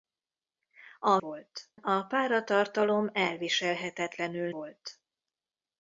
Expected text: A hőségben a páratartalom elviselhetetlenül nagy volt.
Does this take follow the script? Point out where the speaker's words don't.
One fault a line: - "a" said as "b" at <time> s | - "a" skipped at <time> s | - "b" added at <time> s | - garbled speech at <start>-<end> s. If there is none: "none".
- "hőségben" said as "volt" at 1.2 s
- "nagy" skipped at 4.5 s